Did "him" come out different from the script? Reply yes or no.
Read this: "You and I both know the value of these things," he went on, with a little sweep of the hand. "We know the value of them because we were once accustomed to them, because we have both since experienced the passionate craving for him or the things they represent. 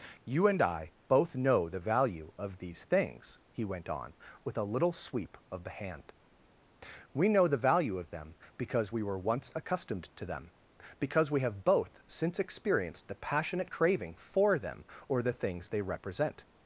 yes